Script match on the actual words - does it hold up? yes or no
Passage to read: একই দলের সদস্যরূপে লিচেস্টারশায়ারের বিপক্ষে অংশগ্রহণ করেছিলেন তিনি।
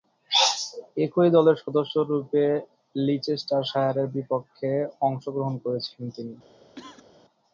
yes